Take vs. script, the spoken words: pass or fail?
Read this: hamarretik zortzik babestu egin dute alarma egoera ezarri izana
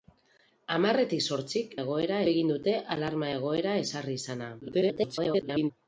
fail